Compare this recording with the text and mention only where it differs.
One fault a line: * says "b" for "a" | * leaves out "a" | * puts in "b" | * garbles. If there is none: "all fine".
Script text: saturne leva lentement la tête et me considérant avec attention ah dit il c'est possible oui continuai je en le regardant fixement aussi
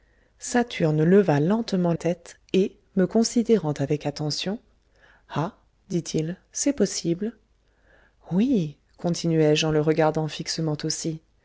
* leaves out "la"